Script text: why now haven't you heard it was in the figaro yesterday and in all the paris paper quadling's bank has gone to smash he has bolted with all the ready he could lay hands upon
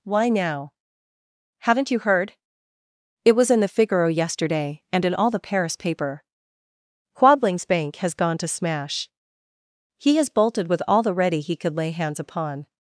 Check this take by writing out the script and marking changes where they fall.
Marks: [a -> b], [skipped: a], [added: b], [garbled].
why now haven't you heard it was in the figaro yesterday and in all the paris paper quadling's bank has gone to smash he has bolted with all the ready he could lay hands upon